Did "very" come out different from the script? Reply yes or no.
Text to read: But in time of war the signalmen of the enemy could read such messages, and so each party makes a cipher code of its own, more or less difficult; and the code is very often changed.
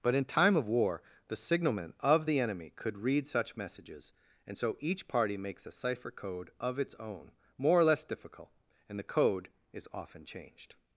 yes